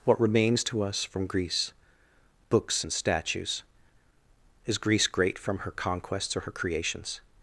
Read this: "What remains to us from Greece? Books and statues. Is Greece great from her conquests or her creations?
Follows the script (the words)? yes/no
yes